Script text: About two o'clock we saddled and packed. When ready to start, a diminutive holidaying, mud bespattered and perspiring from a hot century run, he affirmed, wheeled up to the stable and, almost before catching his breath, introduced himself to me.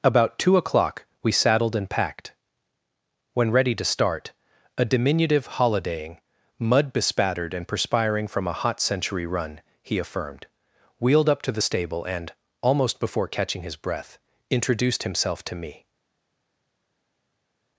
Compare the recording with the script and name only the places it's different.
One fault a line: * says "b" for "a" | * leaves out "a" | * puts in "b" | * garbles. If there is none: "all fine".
all fine